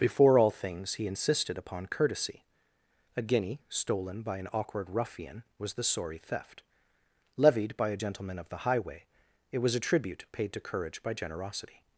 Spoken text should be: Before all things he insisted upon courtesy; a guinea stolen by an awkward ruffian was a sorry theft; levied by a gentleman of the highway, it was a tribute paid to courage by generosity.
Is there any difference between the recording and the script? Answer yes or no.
yes